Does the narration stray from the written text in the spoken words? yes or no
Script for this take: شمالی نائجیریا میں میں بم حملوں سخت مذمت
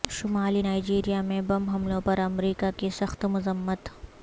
yes